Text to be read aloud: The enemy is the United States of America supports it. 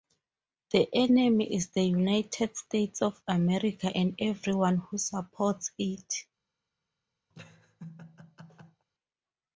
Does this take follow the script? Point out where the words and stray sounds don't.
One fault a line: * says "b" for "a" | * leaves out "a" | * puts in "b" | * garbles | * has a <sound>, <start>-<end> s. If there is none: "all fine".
* puts in "and everyone who"
* has a laugh, 7.3-8.9 s